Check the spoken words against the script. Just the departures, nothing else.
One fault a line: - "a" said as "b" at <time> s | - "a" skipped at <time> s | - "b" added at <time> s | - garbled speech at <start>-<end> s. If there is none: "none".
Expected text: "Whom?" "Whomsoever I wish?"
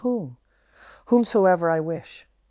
none